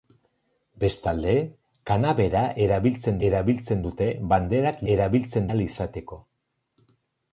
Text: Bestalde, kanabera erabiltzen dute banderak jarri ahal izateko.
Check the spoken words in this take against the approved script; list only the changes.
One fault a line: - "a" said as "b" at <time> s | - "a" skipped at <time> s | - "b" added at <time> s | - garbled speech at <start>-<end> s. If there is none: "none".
- "erabiltzen" added at 3.3 s
- "jarri" said as "erabiltzen" at 4.9 s